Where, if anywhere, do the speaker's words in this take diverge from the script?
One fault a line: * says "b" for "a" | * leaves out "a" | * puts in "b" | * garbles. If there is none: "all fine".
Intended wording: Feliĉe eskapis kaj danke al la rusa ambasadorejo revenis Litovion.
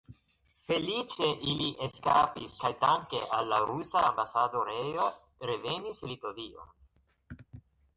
* puts in "ili"